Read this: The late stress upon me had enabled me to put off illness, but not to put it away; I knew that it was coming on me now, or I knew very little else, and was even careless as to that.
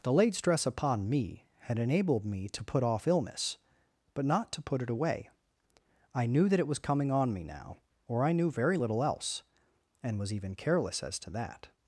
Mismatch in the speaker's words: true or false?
false